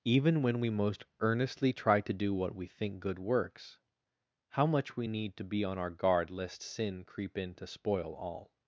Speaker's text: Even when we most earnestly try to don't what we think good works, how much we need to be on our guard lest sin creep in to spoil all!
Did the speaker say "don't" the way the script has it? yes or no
no